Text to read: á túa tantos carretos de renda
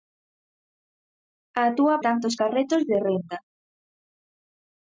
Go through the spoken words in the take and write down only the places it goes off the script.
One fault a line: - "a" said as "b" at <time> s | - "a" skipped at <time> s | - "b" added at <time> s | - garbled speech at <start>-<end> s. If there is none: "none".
none